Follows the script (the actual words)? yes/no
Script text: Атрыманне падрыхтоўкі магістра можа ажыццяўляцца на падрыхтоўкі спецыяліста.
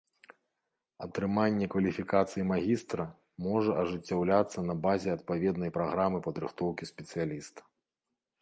no